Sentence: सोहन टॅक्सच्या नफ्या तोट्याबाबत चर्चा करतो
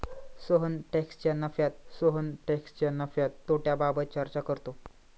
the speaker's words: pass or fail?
fail